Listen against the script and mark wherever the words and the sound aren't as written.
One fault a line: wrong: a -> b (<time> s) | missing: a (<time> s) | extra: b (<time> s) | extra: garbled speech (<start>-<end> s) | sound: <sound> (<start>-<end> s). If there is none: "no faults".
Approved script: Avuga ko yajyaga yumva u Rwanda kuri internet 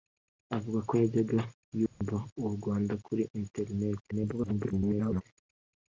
sound: dropout (1.9-2.0 s)
extra: garbled speech (4.1-5.2 s)